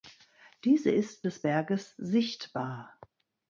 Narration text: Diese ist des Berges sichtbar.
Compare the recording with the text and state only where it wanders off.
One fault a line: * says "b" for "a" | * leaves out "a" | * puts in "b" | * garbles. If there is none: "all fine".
all fine